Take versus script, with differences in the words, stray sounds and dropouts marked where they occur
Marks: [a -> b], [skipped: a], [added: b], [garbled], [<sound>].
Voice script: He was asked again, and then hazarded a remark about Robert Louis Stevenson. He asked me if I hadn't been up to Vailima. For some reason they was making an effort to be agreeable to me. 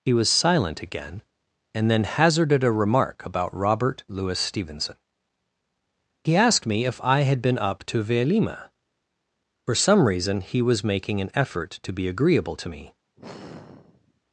He was [asked -> silent] again, and then hazarded a remark about Robert Louis Stevenson. He asked me if I [hadn't -> had] been up to Vailima. For some reason [they -> he] was making an effort to be agreeable to me. [sigh]